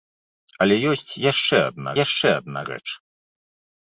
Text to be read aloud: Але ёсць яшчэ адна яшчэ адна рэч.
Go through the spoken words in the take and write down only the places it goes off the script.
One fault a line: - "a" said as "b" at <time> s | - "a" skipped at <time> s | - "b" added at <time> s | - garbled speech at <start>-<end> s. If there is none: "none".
none